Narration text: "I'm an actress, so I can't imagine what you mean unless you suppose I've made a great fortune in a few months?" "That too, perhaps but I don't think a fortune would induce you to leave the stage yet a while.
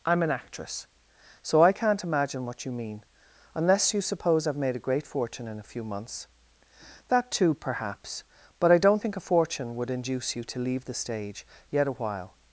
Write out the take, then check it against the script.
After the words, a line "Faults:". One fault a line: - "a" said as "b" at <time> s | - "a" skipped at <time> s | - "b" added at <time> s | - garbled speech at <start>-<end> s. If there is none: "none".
"I'm an actress, so I can't imagine what you mean unless you suppose I've made a great fortune in a few months?" "That too, perhaps but I don't think a fortune would induce you to leave the stage yet a while.
Faults:
none